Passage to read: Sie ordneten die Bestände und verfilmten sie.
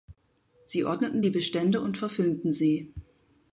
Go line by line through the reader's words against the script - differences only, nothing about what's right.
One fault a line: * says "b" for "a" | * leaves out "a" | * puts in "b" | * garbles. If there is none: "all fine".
all fine